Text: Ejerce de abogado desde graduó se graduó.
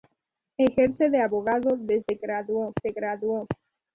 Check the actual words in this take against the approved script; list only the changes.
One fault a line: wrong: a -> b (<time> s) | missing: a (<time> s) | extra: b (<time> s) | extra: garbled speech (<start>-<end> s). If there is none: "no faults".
no faults